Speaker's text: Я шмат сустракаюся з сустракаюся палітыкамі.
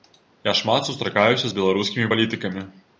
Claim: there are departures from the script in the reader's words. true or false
true